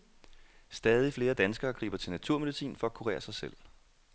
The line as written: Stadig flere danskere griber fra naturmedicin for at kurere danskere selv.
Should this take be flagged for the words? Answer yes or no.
yes